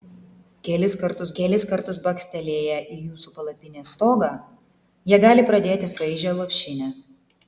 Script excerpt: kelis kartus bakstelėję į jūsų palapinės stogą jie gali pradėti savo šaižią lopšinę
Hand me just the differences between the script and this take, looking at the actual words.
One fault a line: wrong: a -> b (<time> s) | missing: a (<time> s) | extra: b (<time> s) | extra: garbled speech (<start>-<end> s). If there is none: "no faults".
extra: kelis kartus (1.4 s)
missing: savo (5.9 s)